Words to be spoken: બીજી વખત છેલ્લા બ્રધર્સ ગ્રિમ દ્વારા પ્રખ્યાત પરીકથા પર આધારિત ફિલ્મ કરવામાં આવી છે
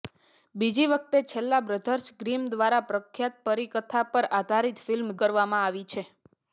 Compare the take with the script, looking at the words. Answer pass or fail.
pass